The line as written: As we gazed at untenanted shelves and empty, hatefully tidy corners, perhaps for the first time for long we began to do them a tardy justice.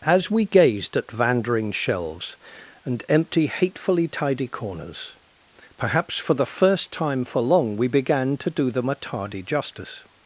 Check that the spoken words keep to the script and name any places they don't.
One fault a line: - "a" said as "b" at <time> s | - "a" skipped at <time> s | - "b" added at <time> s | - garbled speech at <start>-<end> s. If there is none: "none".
- "untenanted" said as "vandering" at 1.1 s